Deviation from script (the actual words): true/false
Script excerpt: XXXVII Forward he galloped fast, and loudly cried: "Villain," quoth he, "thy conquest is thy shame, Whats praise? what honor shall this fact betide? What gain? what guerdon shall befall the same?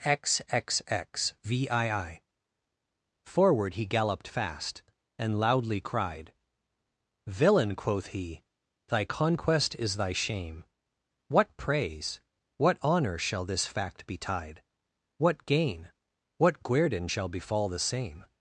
true